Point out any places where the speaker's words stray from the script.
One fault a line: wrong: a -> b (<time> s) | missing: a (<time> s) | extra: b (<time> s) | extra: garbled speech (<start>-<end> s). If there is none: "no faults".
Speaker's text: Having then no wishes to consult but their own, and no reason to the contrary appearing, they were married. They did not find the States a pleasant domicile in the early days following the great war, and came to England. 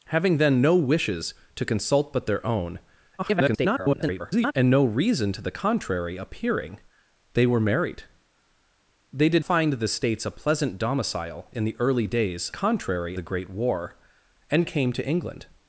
extra: garbled speech (3.2-4.5 s)
missing: not (9.5 s)
wrong: following -> contrary (12.5 s)